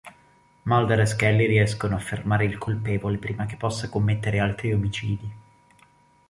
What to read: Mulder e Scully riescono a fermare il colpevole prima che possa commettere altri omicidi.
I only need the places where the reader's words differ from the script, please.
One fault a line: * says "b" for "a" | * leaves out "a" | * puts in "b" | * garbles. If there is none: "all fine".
all fine